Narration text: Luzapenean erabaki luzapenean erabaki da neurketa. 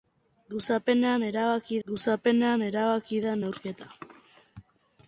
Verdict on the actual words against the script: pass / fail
pass